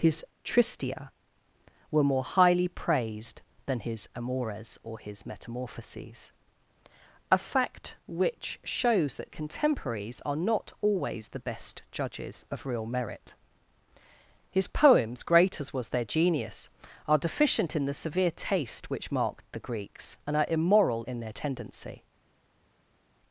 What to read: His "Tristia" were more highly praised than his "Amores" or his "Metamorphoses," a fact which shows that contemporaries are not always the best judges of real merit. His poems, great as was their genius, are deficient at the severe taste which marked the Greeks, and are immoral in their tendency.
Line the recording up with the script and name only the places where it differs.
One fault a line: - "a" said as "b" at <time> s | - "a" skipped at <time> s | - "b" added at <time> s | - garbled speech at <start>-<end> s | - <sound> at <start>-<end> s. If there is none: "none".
- "at" said as "in" at 17.8 s